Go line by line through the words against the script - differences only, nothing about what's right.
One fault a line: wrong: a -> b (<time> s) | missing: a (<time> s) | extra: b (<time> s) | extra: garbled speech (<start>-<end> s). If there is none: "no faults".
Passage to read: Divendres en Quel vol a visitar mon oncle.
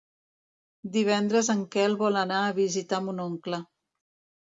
extra: anar (2.2 s)